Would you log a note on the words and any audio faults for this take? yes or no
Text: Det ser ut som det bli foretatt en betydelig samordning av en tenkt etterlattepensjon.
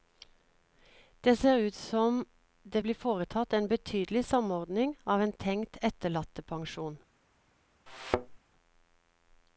yes